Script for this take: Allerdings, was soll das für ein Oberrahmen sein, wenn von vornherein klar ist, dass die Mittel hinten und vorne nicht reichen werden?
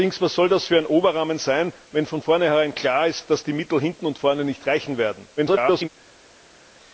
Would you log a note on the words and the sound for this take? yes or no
yes